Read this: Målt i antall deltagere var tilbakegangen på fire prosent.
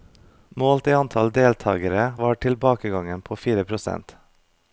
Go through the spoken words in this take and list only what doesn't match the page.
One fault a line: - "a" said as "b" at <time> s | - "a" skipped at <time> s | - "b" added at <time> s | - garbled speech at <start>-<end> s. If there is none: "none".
none